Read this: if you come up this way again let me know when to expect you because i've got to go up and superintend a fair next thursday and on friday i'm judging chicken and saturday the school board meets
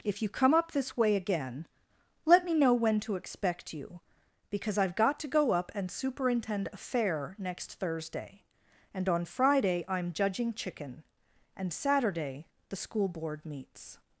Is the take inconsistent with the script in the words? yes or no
no